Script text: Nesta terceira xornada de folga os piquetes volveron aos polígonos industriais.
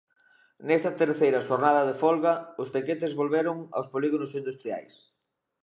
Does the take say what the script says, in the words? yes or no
yes